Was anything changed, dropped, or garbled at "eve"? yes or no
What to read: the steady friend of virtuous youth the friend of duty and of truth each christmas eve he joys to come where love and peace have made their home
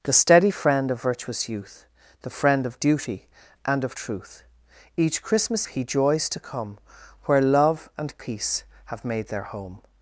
yes